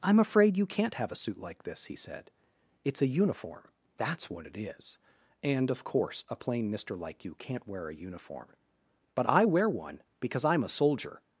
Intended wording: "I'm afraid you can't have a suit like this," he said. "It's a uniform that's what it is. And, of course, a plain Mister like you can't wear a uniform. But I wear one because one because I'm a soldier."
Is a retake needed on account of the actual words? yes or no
yes